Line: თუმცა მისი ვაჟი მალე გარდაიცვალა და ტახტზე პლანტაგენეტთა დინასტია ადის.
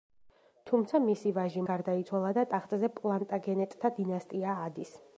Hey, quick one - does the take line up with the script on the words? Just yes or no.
no